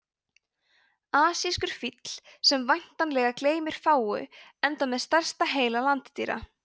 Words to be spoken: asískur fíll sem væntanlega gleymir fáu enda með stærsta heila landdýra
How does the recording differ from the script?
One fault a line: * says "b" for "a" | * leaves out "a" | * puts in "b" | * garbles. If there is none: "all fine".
all fine